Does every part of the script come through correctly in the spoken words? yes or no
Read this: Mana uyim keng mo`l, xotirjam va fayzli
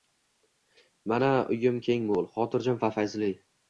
yes